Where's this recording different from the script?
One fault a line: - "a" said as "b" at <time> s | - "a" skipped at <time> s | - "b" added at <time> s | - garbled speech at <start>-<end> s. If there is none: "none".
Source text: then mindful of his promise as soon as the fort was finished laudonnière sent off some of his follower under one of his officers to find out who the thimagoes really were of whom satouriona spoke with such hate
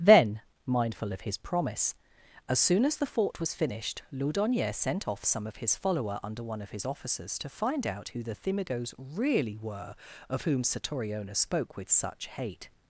none